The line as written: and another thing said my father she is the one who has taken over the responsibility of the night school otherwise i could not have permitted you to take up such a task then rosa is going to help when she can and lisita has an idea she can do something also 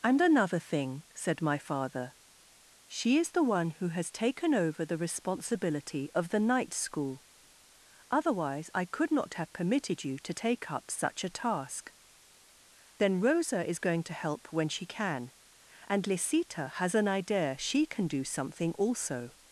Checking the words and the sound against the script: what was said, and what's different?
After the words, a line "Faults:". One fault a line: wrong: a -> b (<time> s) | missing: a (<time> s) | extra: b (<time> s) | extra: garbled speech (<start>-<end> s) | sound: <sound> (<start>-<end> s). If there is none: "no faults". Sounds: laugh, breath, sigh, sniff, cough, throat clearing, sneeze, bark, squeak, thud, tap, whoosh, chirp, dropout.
and another thing said my father she is the one who has taken over the responsibility of the night school otherwise i could not have permitted you to take up such a task then rosa is going to help when she can and lisita has an idea she can do something also
Faults:
no faults